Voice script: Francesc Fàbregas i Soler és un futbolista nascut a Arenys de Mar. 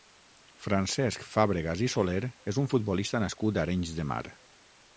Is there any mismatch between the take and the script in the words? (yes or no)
no